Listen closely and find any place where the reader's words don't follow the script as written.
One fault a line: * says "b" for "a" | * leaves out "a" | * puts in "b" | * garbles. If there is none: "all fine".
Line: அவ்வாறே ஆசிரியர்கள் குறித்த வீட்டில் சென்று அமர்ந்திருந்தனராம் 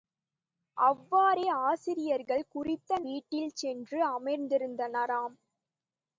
all fine